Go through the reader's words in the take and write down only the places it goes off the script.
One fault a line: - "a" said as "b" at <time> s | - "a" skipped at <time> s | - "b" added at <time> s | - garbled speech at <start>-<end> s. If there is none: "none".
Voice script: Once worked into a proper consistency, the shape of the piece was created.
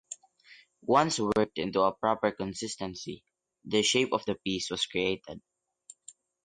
none